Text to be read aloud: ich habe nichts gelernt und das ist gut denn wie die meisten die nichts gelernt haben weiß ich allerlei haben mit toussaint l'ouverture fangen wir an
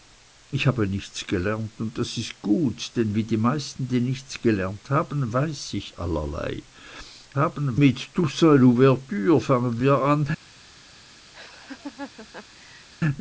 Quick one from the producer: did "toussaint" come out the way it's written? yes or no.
yes